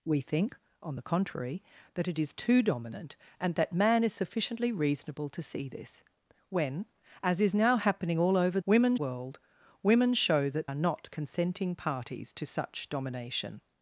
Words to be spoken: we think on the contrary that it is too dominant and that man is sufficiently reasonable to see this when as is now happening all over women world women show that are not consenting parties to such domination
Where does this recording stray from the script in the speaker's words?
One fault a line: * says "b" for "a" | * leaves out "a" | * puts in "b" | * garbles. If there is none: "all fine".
all fine